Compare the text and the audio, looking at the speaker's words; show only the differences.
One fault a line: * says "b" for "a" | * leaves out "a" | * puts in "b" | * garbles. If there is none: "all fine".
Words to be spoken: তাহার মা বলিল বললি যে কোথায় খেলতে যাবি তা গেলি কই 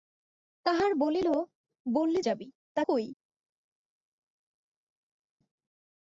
* leaves out "মা"
* leaves out "যে কোথায় খেলতে"
* leaves out "গেলি"